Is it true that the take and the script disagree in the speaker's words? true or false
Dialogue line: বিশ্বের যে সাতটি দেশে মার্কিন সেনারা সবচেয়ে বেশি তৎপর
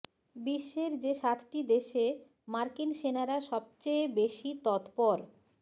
false